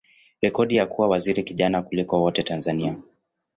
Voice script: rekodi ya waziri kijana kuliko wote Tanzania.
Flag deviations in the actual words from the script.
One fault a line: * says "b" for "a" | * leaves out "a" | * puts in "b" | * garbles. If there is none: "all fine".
* puts in "kuwa"